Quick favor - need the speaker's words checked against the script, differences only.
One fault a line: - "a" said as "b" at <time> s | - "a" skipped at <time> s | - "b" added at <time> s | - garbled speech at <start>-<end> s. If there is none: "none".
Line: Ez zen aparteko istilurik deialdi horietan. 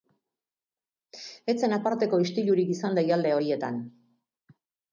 - "izan" added at 2.8 s